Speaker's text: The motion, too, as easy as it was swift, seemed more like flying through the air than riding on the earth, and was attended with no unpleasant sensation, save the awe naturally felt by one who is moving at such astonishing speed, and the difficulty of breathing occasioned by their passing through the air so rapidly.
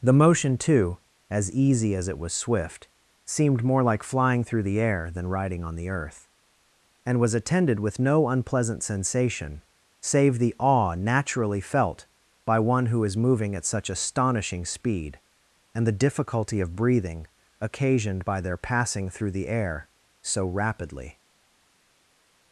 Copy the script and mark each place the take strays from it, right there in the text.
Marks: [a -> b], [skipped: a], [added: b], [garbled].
The motion, too, as easy as it was swift, seemed more like flying through the air than riding on the earth, and was attended with no unpleasant sensation, save the awe naturally felt by one who is moving at such astonishing speed, and the difficulty of breathing occasioned by their passing through the air so rapidly.